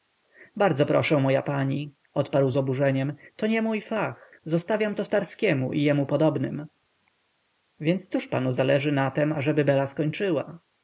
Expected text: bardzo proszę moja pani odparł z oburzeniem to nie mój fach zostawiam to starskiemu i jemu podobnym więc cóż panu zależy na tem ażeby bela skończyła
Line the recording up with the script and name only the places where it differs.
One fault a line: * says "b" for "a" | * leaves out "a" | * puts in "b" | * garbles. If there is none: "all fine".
all fine